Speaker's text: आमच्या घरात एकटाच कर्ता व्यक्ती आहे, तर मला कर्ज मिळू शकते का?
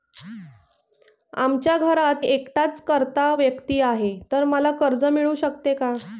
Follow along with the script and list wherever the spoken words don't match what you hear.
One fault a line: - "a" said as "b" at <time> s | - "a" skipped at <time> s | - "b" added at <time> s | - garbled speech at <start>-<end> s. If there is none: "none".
none